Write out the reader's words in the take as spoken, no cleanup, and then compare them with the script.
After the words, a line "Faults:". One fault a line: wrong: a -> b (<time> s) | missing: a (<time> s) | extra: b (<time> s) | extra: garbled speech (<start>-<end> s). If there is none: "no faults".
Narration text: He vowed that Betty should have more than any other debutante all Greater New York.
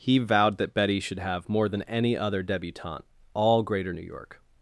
He vowed that Betty should have more than any other debutante all Greater New York.
Faults:
no faults